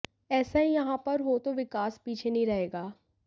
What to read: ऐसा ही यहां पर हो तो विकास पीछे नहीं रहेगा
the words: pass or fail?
pass